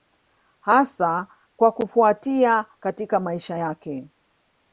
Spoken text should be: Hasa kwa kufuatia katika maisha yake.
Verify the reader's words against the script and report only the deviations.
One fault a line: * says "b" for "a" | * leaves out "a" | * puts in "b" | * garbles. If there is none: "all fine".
all fine